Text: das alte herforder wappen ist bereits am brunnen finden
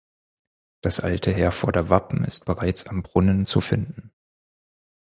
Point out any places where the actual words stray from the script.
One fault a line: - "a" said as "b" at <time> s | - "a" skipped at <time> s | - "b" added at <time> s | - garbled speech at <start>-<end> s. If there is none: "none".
- "zu" added at 3.4 s